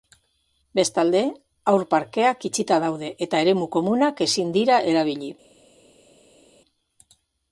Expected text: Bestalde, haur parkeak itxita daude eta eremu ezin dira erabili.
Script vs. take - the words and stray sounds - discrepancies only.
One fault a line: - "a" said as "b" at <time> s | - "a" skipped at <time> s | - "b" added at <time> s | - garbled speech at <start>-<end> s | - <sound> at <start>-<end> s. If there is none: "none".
- "komunak" added at 3.8 s